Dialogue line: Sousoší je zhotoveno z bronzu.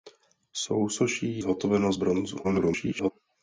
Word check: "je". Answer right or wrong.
wrong